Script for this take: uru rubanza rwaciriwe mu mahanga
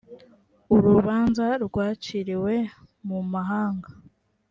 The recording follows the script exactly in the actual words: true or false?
true